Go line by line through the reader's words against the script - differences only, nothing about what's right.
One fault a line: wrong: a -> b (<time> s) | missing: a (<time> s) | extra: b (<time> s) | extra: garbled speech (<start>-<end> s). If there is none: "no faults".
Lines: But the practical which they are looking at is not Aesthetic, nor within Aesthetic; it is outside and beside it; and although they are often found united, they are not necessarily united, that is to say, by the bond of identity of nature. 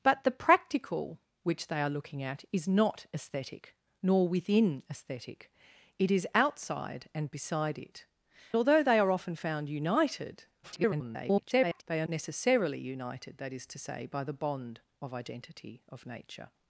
missing: and (8.1 s)
extra: garbled speech (10.6-11.8 s)
missing: not (12.1 s)